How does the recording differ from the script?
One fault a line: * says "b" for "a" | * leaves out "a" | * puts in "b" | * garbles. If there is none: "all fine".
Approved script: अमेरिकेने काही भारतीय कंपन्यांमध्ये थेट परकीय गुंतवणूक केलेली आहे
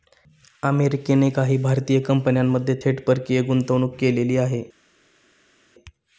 all fine